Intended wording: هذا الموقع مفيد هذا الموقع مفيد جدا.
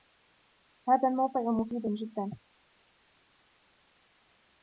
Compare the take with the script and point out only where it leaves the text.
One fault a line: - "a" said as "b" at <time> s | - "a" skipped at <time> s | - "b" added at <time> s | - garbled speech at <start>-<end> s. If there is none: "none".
- "هذا الموقع مفيد" skipped at 1.8 s